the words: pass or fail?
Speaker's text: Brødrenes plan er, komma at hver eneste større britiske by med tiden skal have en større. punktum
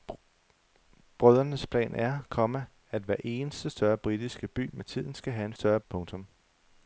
pass